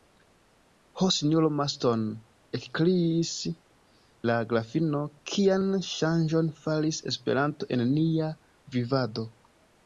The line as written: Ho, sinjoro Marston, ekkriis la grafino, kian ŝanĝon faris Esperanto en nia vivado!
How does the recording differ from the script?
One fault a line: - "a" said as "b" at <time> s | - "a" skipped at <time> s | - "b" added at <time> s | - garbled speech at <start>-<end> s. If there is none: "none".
none